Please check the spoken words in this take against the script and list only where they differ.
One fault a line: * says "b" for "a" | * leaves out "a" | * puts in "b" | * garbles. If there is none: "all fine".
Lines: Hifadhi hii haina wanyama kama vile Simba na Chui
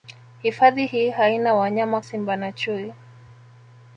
* leaves out "kama vile"